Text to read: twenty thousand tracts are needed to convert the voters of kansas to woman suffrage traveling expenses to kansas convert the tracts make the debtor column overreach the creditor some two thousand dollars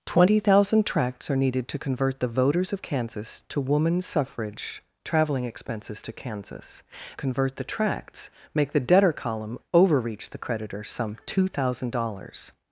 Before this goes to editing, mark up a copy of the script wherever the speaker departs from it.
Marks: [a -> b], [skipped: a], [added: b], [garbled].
twenty thousand tracts are needed to convert the voters of kansas to woman suffrage traveling expenses to kansas convert the tracts make the debtor column overreach the creditor some two thousand dollars